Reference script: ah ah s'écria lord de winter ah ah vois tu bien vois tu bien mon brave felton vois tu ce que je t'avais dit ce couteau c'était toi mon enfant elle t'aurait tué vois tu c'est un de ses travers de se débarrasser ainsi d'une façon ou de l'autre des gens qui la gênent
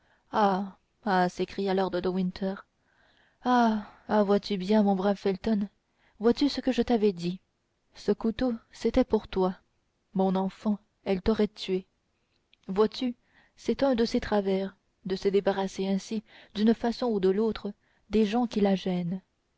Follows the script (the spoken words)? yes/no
no